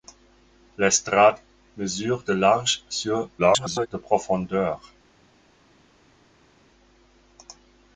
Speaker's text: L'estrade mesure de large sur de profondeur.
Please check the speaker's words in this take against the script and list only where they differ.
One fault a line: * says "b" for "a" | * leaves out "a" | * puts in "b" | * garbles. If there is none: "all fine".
* garbles